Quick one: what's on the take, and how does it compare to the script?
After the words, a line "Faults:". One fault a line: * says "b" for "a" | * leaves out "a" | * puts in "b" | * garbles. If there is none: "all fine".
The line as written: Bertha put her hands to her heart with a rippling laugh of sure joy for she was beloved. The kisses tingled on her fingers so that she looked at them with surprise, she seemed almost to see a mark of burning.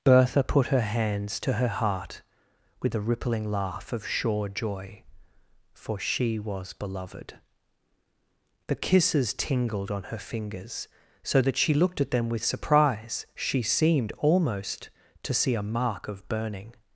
Bertha put her hands to her heart with a rippling laugh of sure joy for she was beloved. The kisses tingled on her fingers so that she looked at them with surprise, she seemed almost to see a mark of burning.
Faults:
all fine